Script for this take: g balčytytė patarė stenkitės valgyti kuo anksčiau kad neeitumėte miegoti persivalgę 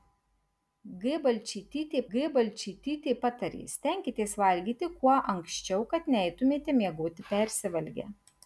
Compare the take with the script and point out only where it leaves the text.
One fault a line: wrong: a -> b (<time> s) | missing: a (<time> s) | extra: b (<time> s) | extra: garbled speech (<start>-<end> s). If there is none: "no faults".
extra: g balčytytė (2.1 s)